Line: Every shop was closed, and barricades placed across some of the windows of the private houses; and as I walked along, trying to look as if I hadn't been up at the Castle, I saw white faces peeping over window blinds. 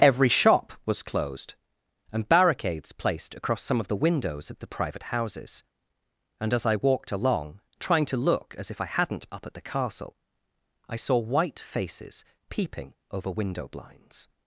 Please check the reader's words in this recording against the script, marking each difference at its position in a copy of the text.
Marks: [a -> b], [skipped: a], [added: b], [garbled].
Every shop was closed, and barricades placed across some of the windows of the private houses; and as I walked along, trying to look as if I hadn't [skipped: been] up at the Castle, I saw white faces peeping over window blinds.